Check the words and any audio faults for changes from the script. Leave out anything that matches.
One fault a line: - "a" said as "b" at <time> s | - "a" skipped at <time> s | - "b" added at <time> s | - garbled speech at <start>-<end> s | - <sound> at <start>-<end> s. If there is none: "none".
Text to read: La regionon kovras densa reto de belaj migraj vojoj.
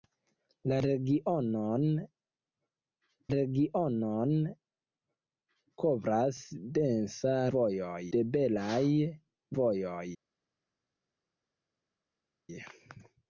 - "regionon" added at 3.3 s
- "reto" said as "vojoj" at 7.6 s
- "migraj" skipped at 8.8 s